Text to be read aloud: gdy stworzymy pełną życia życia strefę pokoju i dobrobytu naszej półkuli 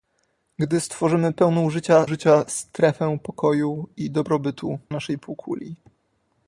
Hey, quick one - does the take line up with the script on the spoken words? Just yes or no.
yes